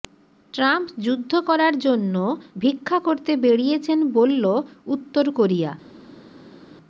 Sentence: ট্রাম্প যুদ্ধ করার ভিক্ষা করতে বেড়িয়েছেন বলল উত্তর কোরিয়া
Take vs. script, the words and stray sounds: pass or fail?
fail